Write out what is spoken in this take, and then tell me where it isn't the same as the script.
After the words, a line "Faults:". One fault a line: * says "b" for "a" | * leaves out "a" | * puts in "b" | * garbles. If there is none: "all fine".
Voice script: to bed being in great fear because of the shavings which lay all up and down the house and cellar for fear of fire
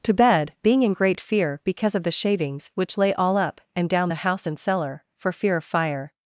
to bed being in great fear because of the shavings which lay all up and down the house and cellar for fear of fire
Faults:
all fine